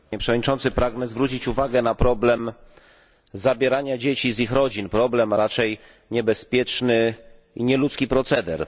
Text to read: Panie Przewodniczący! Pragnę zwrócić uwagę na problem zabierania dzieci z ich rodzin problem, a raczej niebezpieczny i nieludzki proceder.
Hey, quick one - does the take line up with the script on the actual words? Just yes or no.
yes